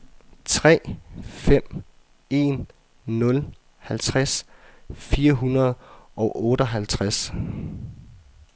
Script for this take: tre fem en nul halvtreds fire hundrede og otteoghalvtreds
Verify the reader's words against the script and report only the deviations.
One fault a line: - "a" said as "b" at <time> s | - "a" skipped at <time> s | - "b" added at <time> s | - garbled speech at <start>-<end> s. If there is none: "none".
none